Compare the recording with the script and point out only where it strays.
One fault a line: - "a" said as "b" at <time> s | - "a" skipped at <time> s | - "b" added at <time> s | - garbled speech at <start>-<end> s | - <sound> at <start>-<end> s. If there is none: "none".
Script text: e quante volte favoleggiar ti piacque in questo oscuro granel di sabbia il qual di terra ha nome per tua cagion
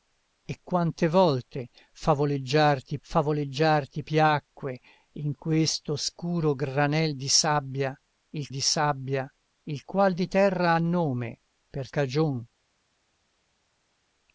- "favoleggiar ti" added at 3.0 s
- "di sabbia il" added at 8.5 s
- "tua" skipped at 11.9 s